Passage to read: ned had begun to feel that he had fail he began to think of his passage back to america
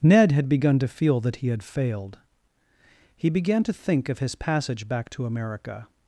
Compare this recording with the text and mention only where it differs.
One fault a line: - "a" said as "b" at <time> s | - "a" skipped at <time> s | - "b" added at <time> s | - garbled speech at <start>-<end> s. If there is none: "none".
- "fail" said as "failed" at 1.6 s